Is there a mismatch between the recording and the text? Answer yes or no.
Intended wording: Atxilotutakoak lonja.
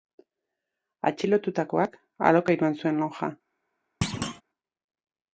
yes